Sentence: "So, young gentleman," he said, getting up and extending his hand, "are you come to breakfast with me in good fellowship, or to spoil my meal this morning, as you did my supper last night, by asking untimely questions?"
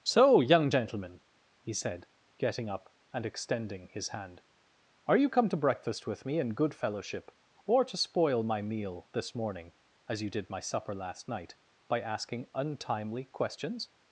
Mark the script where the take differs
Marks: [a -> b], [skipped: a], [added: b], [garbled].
"So, young gentleman," he said, getting up and extending his hand, "are you come to breakfast with me in good fellowship, or to spoil my meal this morning, as you did my supper last night, by asking untimely questions?"